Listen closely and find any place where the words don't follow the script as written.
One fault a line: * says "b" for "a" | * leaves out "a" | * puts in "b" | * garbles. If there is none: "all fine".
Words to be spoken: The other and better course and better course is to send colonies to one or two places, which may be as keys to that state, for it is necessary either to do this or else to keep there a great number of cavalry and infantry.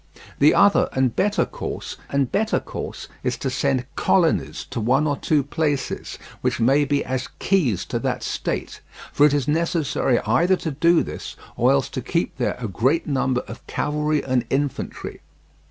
all fine